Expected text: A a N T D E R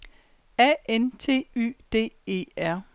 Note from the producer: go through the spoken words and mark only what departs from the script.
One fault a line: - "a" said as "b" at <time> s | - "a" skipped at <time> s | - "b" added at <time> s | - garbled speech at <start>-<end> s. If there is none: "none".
- "a" skipped at 0.8 s
- "Y" added at 1.6 s